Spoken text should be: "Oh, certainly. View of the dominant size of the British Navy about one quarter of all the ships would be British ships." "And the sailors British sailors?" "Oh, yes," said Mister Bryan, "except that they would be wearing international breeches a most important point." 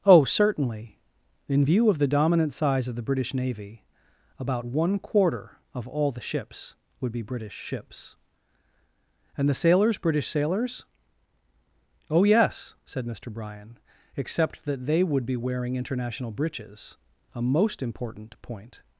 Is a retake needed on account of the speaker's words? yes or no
yes